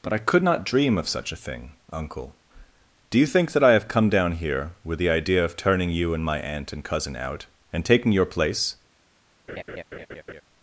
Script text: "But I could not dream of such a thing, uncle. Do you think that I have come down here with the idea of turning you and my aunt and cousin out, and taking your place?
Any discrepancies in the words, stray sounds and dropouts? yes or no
yes